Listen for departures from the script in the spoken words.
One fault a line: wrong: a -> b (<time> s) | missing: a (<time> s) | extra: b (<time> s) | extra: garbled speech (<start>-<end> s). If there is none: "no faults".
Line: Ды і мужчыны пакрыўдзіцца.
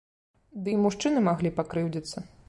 extra: маглі (1.3 s)